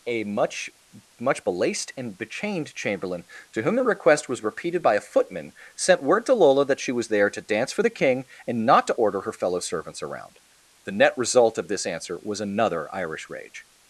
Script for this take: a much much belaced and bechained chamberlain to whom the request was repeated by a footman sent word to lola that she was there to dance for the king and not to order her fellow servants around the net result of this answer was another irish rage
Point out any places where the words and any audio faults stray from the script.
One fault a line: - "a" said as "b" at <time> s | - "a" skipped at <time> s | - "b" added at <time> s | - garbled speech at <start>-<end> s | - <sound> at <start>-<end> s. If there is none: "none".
none